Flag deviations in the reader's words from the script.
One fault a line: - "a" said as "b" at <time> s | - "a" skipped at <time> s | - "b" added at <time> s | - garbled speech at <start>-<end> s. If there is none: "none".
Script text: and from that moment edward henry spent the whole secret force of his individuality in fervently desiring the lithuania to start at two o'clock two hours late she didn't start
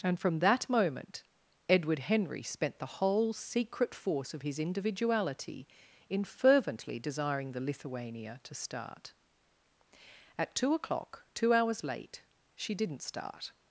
none